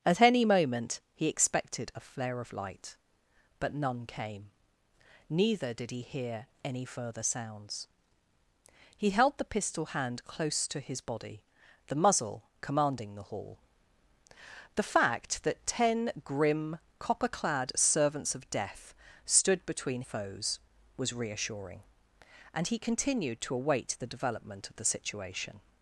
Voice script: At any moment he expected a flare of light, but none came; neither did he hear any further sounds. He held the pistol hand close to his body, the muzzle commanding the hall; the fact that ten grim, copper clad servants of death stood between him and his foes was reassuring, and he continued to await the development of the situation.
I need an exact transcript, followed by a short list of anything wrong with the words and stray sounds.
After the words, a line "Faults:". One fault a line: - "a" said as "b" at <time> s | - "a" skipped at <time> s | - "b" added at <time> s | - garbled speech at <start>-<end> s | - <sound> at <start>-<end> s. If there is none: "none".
At any moment he expected a flare of light, but none came; neither did he hear any further sounds. He held the pistol hand close to his body, the muzzle commanding the hall; the fact that ten grim, copper clad servants of death stood between foes was reassuring, and he continued to await the development of the situation.
Faults:
- "him and his" skipped at 20.0 s